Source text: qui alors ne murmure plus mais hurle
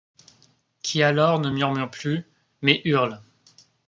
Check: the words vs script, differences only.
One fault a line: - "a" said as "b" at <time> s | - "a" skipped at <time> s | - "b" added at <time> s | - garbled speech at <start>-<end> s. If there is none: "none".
none